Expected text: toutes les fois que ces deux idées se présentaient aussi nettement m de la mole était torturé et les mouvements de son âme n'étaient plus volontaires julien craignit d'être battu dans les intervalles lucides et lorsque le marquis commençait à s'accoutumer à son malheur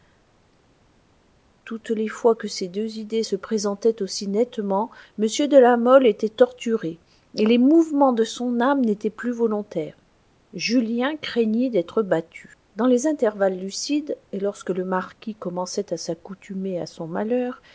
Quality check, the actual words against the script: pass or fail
pass